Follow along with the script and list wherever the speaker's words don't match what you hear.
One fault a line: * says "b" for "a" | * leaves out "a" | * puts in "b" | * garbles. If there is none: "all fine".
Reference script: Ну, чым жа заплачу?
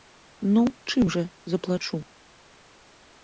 all fine